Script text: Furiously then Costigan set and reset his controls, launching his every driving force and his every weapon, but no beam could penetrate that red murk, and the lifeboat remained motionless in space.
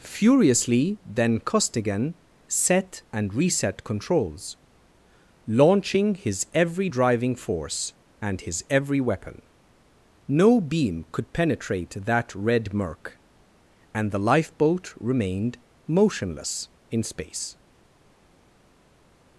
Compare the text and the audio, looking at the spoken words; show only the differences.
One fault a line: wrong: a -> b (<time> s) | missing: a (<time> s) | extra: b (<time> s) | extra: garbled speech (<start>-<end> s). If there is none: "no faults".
missing: his (3.9 s)
missing: but (9.4 s)